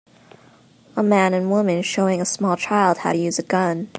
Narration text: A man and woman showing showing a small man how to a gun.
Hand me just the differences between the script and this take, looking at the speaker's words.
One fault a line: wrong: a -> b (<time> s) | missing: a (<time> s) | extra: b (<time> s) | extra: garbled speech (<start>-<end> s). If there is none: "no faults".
missing: showing (2.2 s)
wrong: man -> child (2.5 s)
extra: use (3.2 s)